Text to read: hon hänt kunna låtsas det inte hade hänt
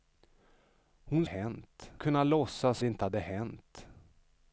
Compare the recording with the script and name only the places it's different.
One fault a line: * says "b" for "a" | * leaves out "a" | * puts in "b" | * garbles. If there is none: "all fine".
all fine